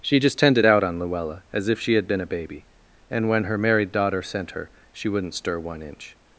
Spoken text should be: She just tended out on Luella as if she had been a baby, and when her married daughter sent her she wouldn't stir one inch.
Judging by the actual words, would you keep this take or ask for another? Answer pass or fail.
pass